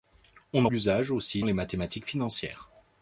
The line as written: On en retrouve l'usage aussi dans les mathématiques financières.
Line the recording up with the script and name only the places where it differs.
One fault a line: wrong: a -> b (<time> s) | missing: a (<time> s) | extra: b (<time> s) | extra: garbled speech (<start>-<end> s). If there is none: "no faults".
missing: retrouve (0.7 s)
missing: dans (1.4 s)